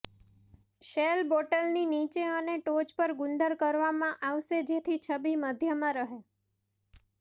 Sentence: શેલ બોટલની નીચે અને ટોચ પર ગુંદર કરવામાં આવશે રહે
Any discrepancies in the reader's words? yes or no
yes